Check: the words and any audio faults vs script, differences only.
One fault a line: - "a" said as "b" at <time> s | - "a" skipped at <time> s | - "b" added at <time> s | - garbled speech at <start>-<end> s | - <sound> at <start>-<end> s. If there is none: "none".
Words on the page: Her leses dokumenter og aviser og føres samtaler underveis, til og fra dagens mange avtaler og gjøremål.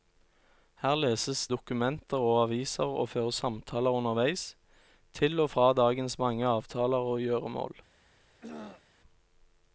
- throat clearing at 8.2-8.8 s